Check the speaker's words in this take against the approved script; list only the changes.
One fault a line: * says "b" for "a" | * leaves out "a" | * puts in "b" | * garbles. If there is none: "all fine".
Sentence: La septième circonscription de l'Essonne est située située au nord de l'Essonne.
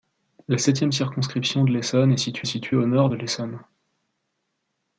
all fine